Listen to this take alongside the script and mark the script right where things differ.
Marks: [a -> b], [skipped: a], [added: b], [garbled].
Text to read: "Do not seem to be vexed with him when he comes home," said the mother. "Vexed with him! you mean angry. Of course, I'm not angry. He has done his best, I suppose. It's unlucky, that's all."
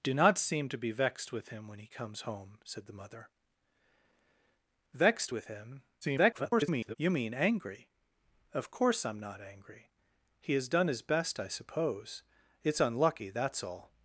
"Do not seem to be vexed with him when he comes home," said the mother. "Vexed with him! [garbled] you mean angry. Of course, I'm not angry. He has done his best, I suppose. It's unlucky, that's all."